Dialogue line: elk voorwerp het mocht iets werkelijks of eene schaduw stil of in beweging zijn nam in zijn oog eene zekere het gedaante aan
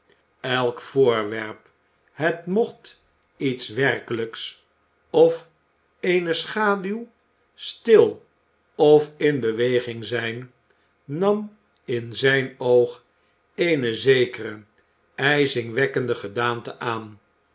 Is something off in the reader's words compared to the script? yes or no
yes